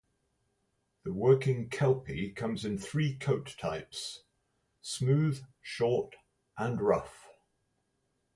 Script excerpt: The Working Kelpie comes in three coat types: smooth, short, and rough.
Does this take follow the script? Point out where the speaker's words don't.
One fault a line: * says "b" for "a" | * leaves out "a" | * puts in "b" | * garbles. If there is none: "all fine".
all fine